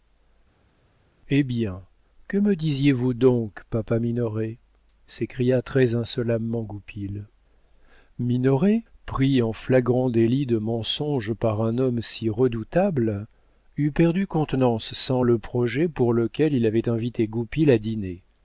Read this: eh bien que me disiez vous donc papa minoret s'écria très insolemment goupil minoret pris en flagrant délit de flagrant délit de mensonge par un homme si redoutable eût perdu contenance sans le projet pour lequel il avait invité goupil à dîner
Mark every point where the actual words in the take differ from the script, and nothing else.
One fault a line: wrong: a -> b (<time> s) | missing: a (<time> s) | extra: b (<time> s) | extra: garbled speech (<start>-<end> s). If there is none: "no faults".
missing: flagrant délit de (10.6 s)